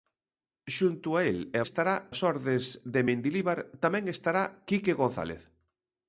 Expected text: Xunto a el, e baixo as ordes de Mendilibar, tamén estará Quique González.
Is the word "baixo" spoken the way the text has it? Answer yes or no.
no